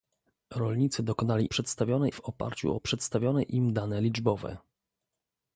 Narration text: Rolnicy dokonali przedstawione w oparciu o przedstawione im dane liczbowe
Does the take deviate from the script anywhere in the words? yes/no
no